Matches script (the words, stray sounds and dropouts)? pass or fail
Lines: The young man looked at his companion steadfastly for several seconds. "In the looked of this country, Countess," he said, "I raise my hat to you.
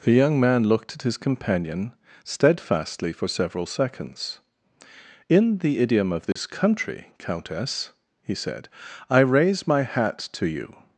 fail